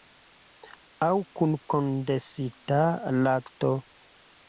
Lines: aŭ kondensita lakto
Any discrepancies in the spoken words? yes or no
yes